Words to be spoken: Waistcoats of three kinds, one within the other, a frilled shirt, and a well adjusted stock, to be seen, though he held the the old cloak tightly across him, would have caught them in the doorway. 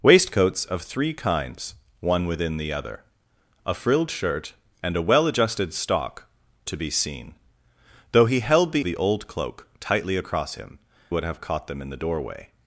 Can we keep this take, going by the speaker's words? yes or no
yes